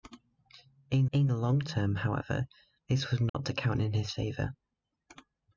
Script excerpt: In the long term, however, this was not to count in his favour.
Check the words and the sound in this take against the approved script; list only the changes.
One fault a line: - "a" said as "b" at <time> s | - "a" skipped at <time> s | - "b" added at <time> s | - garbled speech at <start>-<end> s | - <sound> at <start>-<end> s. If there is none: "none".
- "in" added at 1.1 s
- dropout at 3.3-3.3 s